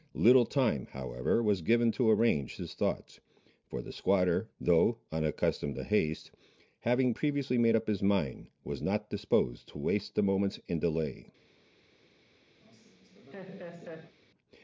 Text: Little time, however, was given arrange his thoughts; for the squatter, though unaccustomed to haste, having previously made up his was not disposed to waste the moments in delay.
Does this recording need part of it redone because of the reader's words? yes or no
yes